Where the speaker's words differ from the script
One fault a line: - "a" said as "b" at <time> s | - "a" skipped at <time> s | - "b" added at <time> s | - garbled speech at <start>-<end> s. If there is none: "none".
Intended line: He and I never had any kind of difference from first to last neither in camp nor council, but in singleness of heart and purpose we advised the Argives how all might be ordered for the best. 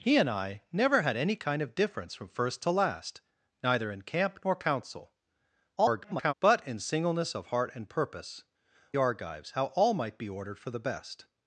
- garbled speech at 5.8-6.3 s
- "we advised the" skipped at 8.4 s